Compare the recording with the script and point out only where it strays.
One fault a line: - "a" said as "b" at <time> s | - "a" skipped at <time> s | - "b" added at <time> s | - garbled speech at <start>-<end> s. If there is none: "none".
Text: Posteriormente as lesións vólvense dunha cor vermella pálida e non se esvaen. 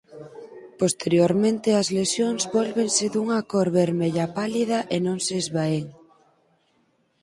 none